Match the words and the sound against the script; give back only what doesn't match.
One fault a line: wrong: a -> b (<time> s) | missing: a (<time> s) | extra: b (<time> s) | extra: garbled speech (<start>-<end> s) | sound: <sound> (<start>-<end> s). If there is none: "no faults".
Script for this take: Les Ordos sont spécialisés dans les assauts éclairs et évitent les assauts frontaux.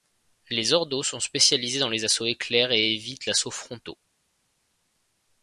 missing: les (3.3 s)